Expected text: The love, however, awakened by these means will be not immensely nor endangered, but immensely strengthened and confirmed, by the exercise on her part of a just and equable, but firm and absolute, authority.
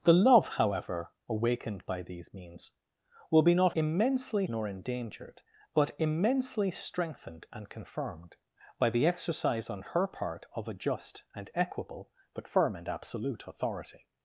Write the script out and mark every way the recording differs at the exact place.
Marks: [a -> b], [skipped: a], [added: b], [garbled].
The love, however, awakened by these means will be not immensely nor endangered, but immensely strengthened and confirmed, by the exercise on her part of a just and equable, but firm and absolute, authority.